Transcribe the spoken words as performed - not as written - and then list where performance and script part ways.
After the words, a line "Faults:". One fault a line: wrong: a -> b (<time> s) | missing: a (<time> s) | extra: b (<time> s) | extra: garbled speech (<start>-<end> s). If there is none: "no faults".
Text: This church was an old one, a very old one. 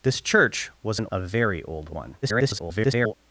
This church was an a very old one. [garbled]
Faults:
missing: old one (1.0 s)
extra: garbled speech (2.2-3.1 s)